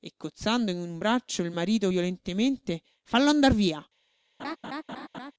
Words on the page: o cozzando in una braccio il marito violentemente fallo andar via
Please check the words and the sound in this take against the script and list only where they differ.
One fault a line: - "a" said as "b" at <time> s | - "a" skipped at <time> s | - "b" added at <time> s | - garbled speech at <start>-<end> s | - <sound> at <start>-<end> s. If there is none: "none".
- "o" said as "e" at 0.0 s
- "una" said as "un" at 0.8 s
- laugh at 4.4-5.3 s